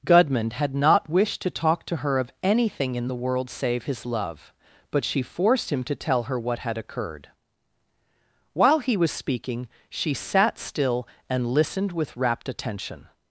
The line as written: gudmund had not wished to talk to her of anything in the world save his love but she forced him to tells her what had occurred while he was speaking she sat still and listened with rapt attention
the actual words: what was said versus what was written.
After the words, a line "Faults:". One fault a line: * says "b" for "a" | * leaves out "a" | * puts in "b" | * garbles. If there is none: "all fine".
gudmund had not wished to talk to her of anything in the world save his love but she forced him to tell her what had occurred while he was speaking she sat still and listened with rapt attention
Faults:
* says "tell" for "tells"